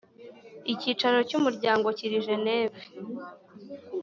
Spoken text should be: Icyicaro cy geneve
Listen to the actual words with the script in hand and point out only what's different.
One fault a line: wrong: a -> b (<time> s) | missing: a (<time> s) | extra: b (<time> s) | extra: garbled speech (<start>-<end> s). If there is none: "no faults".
extra: umuryango kiri (1.4 s)